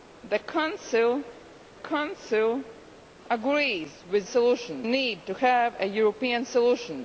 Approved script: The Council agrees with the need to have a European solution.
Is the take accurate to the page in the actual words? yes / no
no